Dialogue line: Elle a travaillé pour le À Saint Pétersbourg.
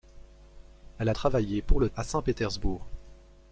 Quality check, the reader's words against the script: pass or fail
pass